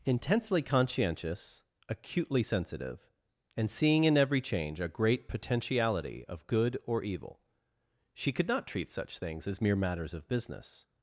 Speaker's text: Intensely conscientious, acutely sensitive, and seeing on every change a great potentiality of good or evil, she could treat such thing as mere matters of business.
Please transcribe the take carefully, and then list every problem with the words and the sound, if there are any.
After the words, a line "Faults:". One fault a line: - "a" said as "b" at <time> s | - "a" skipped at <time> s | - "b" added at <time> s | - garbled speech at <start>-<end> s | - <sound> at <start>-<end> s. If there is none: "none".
Intensely conscientious, acutely sensitive, and seeing in every change a great potentiality of good or evil, she could not treat such things as mere matters of business.
Faults:
- "on" said as "in" at 4.0 s
- "not" added at 8.5 s
- "thing" said as "things" at 9.2 s